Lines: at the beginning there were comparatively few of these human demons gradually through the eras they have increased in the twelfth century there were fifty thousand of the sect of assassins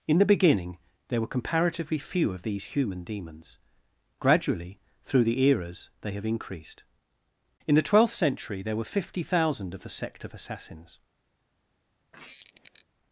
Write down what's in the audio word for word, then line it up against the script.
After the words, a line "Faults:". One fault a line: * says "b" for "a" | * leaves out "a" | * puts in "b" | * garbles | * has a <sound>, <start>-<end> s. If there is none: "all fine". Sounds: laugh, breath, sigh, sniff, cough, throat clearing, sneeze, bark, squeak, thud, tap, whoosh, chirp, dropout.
in the beginning there were comparatively few of these human demons gradually through the eras they have increased in the twelfth century there were fifty thousand of the sect of assassins
Faults:
* says "in" for "at"
* has a squeak, 12.1-12.9 s